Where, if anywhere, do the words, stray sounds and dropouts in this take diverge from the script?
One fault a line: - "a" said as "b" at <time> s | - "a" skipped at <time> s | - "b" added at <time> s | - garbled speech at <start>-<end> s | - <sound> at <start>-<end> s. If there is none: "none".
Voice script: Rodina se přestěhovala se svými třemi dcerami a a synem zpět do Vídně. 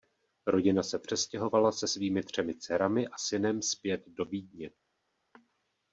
- "a" skipped at 3.2 s